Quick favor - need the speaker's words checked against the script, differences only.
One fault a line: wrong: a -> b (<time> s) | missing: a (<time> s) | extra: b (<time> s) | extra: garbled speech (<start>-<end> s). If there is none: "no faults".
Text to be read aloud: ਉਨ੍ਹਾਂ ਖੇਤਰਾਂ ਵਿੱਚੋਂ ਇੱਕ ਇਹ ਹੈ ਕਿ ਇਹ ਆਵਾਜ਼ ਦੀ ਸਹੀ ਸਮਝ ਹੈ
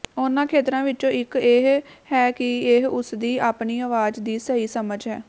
extra: ਉਸਦੀ ਆਪਣੀ (2.9 s)